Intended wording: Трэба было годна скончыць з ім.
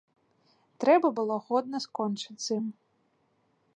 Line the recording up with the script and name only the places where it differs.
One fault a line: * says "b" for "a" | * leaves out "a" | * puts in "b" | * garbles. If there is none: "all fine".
all fine